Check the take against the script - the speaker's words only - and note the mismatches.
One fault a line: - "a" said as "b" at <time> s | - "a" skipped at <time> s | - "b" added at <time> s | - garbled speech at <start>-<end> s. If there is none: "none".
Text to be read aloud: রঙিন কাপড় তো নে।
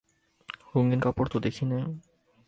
- "দেখি" added at 1.4 s